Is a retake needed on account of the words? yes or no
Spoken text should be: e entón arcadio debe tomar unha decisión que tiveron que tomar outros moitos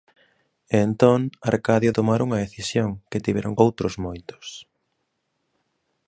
yes